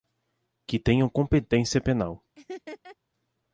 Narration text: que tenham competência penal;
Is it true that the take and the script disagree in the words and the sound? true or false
true